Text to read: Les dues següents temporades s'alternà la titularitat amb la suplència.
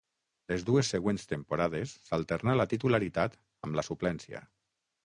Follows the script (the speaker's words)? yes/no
yes